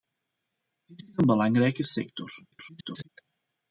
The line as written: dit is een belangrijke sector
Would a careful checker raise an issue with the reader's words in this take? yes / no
yes